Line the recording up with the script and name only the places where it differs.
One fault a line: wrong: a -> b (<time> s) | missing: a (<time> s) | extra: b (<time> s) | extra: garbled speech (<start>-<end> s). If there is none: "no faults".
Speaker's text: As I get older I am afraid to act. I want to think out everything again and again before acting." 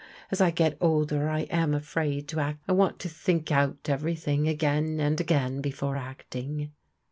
no faults